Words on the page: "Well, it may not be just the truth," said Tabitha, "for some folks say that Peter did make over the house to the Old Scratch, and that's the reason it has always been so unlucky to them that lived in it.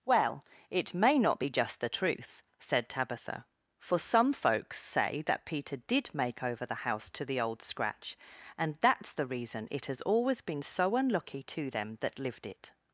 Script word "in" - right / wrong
wrong